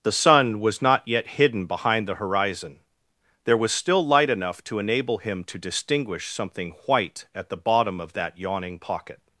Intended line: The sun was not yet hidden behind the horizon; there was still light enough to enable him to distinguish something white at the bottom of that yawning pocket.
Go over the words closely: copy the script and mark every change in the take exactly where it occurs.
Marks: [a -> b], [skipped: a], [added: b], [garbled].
The sun was not yet hidden behind the horizon; there was still light enough to enable him to distinguish something white at the bottom of that yawning pocket.